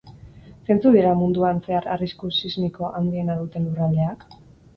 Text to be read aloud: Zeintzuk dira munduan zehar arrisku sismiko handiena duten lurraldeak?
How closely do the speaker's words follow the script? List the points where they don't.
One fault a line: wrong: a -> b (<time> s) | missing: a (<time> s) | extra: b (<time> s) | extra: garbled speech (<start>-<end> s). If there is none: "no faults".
no faults